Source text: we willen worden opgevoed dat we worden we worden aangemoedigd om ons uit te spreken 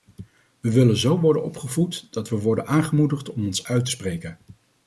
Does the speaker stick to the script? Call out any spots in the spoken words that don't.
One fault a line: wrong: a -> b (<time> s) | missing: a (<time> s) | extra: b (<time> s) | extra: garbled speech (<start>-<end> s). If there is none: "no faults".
extra: zo (1.0 s)
missing: we worden (2.7 s)